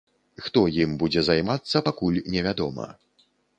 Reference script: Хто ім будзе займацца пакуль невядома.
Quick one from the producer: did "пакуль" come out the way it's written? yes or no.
yes